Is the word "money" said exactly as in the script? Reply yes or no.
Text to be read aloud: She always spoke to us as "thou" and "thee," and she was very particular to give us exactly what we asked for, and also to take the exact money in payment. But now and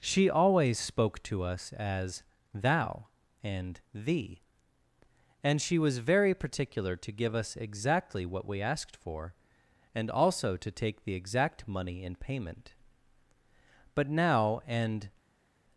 yes